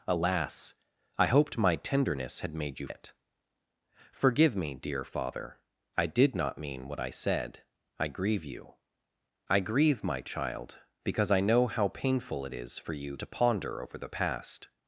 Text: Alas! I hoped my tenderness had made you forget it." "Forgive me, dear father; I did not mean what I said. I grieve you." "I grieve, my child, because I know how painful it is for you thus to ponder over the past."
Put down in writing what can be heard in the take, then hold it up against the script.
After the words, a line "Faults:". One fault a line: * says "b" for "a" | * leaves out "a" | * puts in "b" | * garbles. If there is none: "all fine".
Alas! I hoped my tenderness had made you it." "Forgive me, dear father; I did not mean what I said. I grieve you." "I grieve, my child, because I know how painful it is for you to ponder over the past."
Faults:
* leaves out "forget"
* leaves out "thus"